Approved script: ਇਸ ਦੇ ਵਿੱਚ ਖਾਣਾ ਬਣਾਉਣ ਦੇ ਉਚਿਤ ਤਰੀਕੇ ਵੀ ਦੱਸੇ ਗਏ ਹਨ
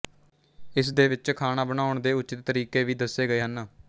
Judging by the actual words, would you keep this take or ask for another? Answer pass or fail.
pass